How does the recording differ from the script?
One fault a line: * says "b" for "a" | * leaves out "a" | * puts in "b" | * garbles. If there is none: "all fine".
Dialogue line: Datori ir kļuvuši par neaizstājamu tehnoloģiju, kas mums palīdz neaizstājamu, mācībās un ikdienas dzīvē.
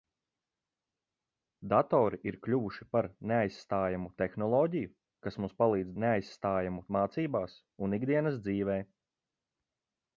all fine